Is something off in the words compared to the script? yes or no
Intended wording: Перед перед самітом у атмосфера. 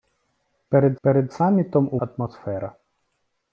no